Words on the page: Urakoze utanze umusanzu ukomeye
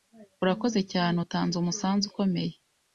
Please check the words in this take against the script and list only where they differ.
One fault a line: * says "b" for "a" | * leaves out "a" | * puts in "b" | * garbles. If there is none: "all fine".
* puts in "cyane"